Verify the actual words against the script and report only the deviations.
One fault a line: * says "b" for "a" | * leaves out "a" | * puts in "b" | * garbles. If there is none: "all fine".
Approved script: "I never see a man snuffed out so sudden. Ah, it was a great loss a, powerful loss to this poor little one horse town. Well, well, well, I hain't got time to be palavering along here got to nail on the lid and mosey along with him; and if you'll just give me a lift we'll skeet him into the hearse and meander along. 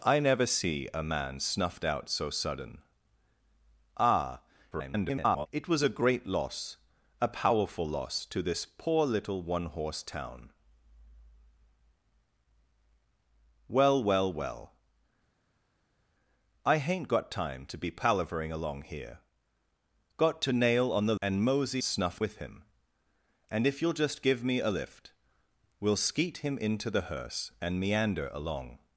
* garbles
* leaves out "lid"
* says "snuffed" for "along"